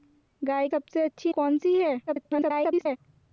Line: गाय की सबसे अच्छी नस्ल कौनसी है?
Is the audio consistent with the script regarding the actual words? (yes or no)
no